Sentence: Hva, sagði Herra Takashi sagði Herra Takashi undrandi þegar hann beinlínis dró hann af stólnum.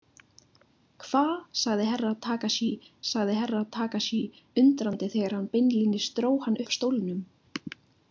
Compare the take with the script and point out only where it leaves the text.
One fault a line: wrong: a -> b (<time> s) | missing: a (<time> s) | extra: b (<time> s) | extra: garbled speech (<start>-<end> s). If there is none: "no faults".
no faults